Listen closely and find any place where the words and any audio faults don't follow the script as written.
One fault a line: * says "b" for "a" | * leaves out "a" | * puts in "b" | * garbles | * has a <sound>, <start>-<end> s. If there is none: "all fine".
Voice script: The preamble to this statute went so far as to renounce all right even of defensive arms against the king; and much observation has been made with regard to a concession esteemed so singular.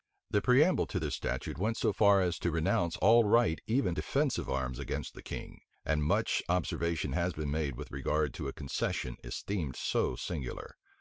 * leaves out "of"